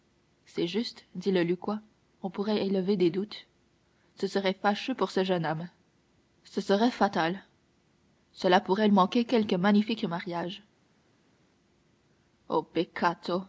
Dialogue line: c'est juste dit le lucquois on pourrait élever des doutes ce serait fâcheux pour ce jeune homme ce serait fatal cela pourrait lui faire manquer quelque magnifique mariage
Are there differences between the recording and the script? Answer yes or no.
yes